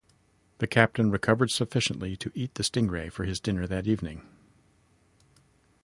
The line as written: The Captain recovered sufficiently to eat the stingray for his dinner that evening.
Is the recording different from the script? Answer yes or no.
no